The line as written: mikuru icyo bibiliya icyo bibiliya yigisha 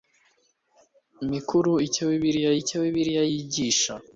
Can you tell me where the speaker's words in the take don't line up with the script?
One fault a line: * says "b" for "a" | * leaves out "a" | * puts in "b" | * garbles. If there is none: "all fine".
all fine